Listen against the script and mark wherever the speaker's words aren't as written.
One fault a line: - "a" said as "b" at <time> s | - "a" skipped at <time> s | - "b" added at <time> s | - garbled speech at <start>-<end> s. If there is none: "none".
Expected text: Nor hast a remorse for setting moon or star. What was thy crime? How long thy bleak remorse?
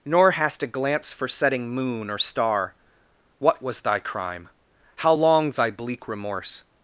- "remorse" said as "glance" at 0.7 s